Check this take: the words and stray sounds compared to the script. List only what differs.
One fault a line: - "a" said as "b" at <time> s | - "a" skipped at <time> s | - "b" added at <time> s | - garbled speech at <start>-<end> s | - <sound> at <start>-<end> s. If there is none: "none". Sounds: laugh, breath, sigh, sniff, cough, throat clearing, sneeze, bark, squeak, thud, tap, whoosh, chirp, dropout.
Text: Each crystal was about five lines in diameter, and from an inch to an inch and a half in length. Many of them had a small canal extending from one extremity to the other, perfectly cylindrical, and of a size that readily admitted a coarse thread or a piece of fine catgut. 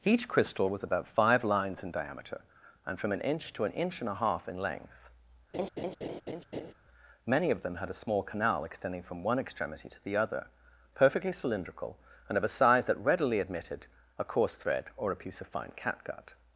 - laugh at 5.5-6.7 s